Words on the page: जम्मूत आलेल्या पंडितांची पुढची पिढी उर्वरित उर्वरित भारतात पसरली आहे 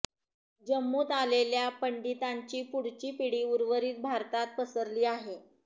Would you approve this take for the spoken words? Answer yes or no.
no